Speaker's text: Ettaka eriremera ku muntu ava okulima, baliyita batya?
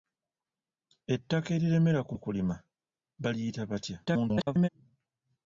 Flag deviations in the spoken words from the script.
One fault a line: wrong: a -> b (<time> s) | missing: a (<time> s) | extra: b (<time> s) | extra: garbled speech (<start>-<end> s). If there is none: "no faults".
missing: muntu ava (2.1 s)
extra: garbled speech (4.1-4.7 s)